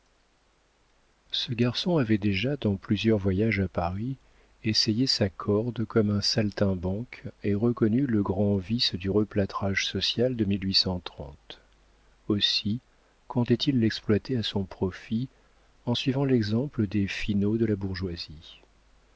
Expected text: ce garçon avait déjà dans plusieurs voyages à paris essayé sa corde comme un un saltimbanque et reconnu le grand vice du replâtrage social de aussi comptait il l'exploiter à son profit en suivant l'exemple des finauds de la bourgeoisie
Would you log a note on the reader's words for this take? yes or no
yes